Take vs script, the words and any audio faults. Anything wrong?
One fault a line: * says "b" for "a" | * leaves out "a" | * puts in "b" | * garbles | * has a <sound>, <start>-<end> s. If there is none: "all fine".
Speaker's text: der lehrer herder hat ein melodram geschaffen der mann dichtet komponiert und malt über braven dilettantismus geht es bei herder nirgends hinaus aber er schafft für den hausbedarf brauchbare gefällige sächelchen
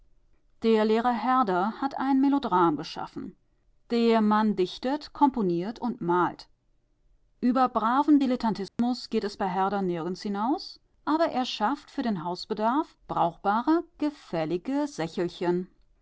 * has a dropout, 8.7-8.8 s